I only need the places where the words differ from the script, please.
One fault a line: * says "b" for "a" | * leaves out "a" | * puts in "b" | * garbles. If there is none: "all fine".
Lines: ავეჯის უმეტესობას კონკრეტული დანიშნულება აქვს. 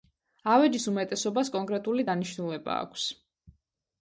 all fine